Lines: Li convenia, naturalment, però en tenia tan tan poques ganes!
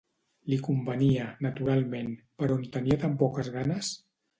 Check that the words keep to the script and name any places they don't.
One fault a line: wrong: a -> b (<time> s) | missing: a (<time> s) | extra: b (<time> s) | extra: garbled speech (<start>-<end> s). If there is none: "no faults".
missing: tan (3.2 s)